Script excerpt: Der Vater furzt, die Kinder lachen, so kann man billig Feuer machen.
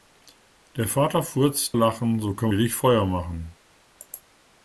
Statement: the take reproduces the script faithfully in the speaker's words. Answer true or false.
false